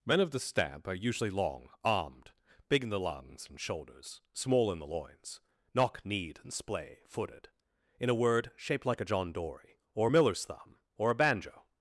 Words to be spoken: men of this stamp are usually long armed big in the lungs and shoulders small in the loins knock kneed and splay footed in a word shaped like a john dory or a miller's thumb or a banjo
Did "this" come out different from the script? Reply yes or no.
yes